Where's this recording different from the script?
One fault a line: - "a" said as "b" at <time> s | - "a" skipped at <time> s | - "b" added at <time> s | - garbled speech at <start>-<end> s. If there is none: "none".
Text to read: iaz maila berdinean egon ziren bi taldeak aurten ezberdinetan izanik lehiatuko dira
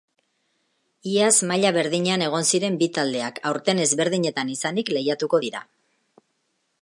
none